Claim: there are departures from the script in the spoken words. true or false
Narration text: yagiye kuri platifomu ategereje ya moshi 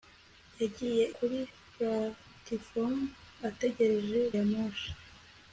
false